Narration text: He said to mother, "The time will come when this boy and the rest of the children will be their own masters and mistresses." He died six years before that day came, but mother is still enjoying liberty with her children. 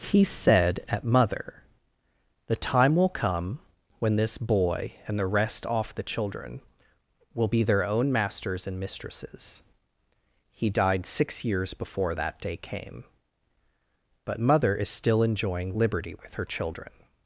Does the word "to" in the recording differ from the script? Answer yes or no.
yes